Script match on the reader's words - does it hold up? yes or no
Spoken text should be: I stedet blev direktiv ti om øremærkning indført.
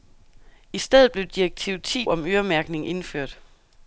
yes